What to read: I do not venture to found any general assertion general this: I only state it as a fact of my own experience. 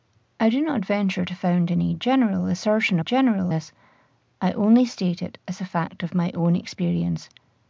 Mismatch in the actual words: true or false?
false